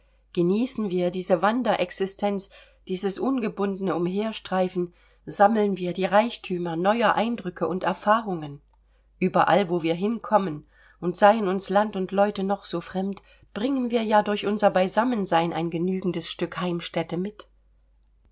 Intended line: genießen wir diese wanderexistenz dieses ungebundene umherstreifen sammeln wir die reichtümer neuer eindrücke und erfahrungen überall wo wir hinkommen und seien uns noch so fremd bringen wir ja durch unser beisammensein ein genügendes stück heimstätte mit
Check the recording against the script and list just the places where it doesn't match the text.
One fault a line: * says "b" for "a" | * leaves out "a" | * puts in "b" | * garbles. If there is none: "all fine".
* puts in "land und leute"